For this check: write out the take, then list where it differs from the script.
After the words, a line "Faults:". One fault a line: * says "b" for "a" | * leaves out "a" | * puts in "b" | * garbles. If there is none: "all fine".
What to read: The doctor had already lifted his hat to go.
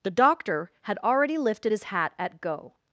The doctor had already lifted his hat at go.
Faults:
* says "at" for "to"